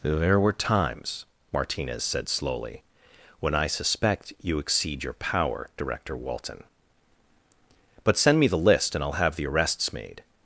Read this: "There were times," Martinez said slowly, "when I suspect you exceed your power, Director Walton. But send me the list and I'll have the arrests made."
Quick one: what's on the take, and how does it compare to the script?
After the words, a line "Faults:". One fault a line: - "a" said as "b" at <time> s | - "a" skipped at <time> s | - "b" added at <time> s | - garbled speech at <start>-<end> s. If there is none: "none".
"There were times," Martinez said slowly, "when I suspect you exceed your power, Director Walton. But send me the list and I'll have the arrests made."
Faults:
none